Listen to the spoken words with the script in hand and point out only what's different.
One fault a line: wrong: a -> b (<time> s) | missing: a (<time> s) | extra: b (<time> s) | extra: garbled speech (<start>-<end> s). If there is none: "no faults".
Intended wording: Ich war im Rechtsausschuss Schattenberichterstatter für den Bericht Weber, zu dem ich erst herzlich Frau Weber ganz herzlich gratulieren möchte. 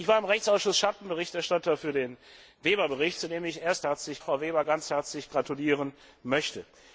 no faults